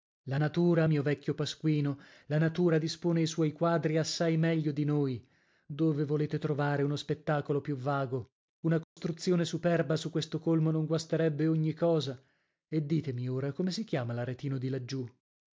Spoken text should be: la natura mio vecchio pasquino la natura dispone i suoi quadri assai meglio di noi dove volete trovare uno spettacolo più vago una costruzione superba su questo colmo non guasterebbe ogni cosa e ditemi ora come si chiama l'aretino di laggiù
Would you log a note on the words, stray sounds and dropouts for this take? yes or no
yes